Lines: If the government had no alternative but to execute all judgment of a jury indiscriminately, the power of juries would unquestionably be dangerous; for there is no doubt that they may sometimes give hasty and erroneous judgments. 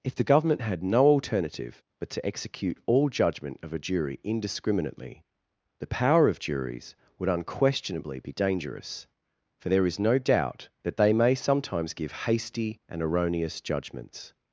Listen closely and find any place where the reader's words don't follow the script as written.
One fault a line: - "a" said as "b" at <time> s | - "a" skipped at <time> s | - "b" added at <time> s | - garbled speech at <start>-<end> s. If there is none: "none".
none